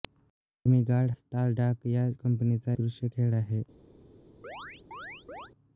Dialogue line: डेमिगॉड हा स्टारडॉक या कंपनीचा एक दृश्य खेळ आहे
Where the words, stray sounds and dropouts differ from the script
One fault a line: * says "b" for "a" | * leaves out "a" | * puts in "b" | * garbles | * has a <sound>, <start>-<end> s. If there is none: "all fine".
* leaves out "हा"
* leaves out "एक"
* has a chirp, 4.4-5.5 s